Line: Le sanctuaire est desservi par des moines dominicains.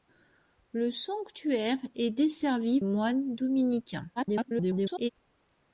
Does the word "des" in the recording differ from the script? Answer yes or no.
yes